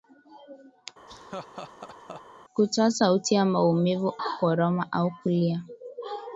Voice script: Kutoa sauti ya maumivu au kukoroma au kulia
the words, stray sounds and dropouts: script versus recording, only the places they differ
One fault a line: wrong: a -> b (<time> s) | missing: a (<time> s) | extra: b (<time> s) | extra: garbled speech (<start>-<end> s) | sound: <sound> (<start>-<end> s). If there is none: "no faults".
sound: laugh (1.1-2.2 s)
missing: au (4.1 s)